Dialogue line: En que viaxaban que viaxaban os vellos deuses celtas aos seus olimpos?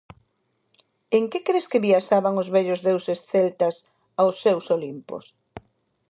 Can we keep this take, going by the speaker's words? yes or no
no